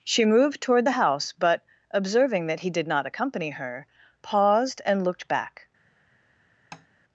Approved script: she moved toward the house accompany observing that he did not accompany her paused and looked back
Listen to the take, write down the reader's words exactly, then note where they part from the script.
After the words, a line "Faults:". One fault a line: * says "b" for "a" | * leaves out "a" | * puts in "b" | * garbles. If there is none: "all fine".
she moved toward the house but observing that he did not accompany her paused and looked back
Faults:
* says "but" for "accompany"